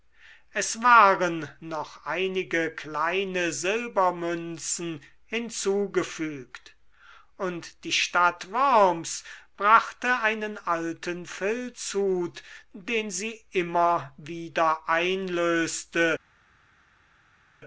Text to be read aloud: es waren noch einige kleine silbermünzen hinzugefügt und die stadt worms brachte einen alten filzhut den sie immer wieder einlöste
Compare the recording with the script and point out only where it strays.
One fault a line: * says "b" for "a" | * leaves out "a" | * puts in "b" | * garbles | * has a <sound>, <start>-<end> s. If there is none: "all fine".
all fine